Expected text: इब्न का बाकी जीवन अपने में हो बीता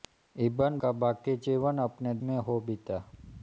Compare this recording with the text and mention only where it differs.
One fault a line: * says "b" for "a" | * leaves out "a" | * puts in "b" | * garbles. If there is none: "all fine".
all fine